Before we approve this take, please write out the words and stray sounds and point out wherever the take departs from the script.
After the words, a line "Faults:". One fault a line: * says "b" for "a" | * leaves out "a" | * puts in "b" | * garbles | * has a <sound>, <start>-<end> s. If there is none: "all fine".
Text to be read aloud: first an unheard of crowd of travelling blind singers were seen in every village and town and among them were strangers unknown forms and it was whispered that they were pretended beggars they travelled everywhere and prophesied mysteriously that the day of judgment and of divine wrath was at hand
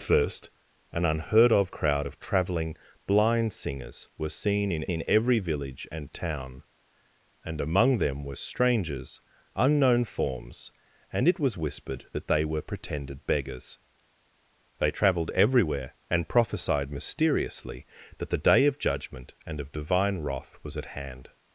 first an unheard of crowd of travelling blind singers were seen in in every village and town and among them were strangers unknown forms and it was whispered that they were pretended beggars they travelled everywhere and prophesied mysteriously that the day of judgment and of divine wrath was at hand
Faults:
* puts in "in"